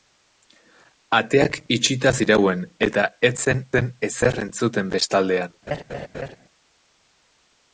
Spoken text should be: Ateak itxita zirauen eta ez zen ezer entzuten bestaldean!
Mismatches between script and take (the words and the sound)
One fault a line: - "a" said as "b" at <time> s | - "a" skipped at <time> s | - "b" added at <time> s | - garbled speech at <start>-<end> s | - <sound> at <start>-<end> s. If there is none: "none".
- "zen" added at 3.8 s
- laugh at 5.7-6.4 s